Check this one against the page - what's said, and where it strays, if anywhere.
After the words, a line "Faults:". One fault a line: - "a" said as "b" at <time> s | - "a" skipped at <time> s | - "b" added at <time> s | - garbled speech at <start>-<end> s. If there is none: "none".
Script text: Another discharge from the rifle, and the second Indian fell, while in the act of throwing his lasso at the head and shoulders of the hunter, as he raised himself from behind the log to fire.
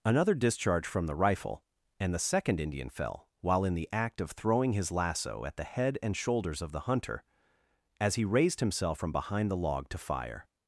Another discharge from the rifle, and the second Indian fell, while in the act of throwing his lasso at the head and shoulders of the hunter, as he raised himself from behind the log to fire.
Faults:
none